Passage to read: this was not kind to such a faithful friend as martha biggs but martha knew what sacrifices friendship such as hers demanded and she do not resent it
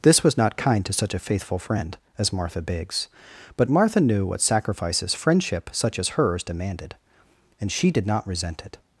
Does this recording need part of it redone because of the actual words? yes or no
yes